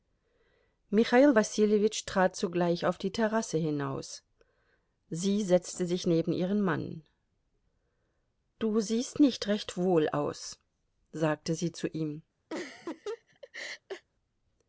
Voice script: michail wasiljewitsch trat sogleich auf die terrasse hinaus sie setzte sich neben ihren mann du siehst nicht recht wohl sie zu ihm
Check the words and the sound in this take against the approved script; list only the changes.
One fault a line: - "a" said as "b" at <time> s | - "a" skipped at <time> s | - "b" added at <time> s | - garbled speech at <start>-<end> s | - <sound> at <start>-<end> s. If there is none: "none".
- "aus sagte" added at 10.1 s
- laugh at 12.5-14.1 s